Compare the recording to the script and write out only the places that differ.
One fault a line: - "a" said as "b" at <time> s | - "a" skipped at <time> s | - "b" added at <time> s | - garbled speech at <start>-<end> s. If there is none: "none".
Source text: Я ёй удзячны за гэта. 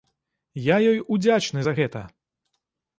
none